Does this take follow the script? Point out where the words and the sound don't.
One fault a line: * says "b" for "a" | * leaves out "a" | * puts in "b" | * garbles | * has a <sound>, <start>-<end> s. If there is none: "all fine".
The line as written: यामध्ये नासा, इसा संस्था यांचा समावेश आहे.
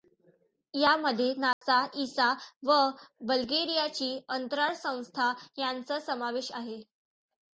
* has a dropout, 1.5-1.6 s
* puts in "व बल्गेरियाची अंतराळ"